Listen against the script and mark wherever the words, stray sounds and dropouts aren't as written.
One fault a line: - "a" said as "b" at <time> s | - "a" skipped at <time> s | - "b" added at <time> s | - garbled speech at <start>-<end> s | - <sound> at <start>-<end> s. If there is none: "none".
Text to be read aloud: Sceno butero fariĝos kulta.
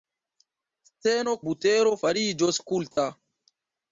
- dropout at 2.9-3.0 s